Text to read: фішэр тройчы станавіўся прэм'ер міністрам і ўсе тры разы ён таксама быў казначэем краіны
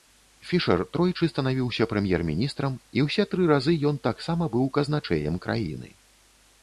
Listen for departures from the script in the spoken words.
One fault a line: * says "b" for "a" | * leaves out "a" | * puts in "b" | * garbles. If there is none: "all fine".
all fine